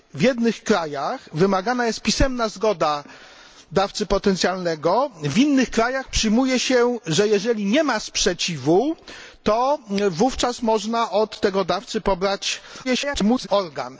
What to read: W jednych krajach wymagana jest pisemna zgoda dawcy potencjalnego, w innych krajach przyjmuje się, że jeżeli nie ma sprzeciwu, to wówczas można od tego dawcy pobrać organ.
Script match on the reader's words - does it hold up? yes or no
no